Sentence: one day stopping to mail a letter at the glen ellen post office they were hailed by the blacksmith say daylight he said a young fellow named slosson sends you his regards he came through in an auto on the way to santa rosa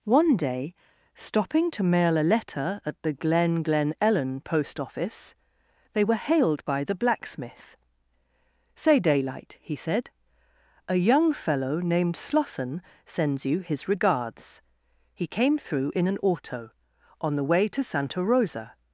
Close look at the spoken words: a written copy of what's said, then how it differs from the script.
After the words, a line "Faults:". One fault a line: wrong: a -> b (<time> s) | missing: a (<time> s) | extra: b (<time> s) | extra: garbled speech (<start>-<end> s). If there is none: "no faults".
one day stopping to mail a letter at the glen glen ellen post office they were hailed by the blacksmith say daylight he said a young fellow named slosson sends you his regards he came through in an auto on the way to santa rosa
Faults:
extra: glen (3.6 s)